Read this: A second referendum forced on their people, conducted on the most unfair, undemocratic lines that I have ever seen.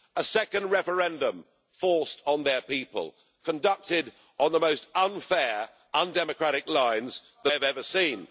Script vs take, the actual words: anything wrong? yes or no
yes